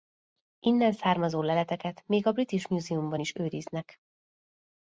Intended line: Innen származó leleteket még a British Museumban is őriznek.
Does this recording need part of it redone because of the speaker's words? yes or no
no